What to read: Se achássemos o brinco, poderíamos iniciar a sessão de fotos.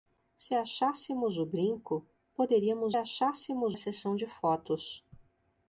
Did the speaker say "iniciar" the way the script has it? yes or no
no